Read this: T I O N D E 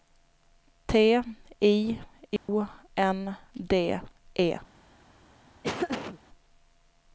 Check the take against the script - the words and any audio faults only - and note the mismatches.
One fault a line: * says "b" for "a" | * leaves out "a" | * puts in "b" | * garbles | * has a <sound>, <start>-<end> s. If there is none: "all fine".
* has a dropout, 2.4-2.5 s
* has a laugh, 5.6-6.2 s